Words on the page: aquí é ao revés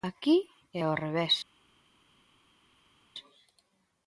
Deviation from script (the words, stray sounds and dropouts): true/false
false